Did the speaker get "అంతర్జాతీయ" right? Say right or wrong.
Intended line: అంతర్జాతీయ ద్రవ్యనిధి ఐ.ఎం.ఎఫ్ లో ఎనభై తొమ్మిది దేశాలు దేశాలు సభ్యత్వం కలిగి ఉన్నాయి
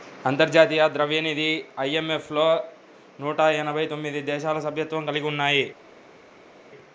right